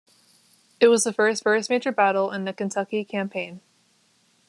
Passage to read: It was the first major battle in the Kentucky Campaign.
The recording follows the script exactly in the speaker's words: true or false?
false